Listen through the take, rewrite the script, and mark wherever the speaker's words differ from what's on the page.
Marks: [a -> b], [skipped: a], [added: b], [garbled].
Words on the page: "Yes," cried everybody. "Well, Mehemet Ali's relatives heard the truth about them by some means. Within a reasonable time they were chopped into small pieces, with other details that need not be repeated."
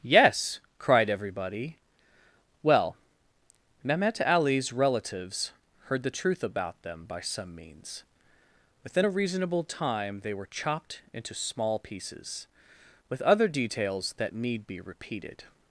"Yes," cried everybody. "Well, Mehemet Ali's relatives heard the truth about them by some means. Within a reasonable time they were chopped into small pieces, with other details that need [skipped: not] be repeated."